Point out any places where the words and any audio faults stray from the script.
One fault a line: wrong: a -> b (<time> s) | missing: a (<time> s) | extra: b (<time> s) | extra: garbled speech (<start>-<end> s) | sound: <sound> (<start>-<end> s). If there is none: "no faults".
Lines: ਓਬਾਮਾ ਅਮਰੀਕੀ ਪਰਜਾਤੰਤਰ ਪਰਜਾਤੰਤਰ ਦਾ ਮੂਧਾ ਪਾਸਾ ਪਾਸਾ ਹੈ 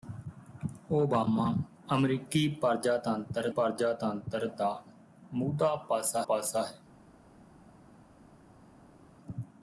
no faults